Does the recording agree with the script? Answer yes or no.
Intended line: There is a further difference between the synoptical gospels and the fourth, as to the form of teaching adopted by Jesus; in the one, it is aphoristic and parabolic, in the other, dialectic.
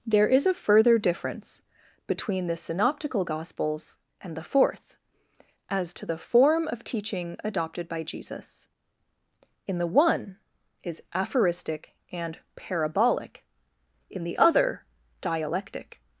no